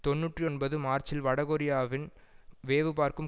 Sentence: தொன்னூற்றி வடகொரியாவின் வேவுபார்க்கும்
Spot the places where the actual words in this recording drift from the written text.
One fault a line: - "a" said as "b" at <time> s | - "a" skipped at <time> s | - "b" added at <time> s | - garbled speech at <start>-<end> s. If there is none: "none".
- "ஒன்பது மார்ச்சில்" added at 0.4 s